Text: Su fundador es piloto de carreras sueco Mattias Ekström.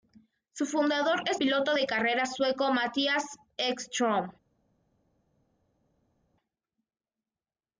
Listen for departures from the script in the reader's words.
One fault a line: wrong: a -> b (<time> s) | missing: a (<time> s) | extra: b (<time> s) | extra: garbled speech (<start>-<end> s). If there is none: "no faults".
no faults